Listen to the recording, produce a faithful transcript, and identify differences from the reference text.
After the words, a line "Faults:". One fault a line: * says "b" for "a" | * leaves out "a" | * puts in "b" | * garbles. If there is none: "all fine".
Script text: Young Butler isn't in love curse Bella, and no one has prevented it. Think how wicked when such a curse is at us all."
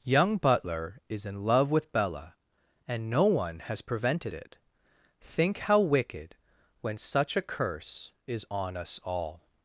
Young Butler is in love with Bella, and no one has prevented it. Think how wicked when such a curse is on us all."
Faults:
* says "is" for "isn't"
* says "with" for "curse"
* says "on" for "at"